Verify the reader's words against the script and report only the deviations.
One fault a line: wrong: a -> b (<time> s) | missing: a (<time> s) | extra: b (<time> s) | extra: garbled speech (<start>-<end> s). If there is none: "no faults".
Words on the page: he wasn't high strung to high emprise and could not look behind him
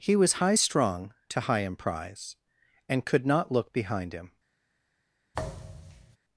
wrong: wasn't -> was (0.1 s)